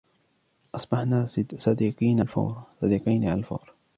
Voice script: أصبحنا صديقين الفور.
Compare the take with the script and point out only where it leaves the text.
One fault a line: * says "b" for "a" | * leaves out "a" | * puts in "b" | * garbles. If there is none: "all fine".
all fine